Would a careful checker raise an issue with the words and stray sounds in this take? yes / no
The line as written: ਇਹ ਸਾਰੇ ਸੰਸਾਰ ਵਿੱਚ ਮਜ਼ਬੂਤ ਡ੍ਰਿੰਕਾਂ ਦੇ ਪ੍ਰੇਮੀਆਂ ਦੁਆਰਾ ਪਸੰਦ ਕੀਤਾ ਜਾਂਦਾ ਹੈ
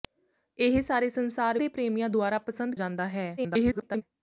yes